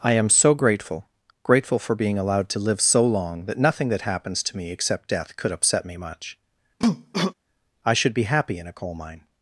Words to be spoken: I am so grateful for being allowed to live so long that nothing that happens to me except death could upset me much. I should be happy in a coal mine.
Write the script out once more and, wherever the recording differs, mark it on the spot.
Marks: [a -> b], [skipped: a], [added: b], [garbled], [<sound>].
I am so grateful [added: grateful] for being allowed to live so long that nothing that happens to me except death could upset me much. [cough] I should be happy in a coal mine.